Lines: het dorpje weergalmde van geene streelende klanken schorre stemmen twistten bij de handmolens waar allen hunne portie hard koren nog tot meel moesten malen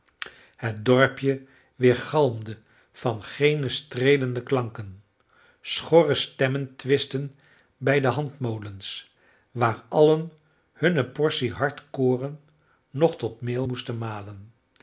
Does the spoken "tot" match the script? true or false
true